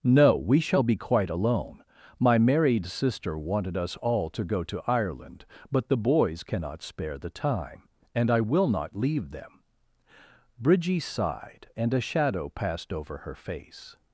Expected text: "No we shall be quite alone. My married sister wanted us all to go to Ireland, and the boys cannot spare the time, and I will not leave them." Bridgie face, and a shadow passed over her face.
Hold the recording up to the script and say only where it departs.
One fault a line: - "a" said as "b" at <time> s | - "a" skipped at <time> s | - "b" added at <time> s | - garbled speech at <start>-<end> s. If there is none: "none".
- "and" said as "but" at 5.7 s
- "face" said as "sighed" at 11.0 s